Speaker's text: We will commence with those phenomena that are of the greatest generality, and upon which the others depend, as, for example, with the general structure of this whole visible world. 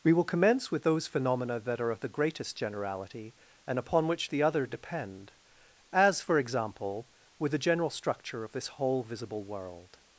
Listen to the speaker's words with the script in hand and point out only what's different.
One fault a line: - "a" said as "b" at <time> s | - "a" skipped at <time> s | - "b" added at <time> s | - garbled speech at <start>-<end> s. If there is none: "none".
- "others" said as "other" at 4.4 s